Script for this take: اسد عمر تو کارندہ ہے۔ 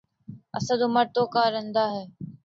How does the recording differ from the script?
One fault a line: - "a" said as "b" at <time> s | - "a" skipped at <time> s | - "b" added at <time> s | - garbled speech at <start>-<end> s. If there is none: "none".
none